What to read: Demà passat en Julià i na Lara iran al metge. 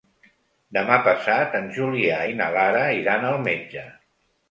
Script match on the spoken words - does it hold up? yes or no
yes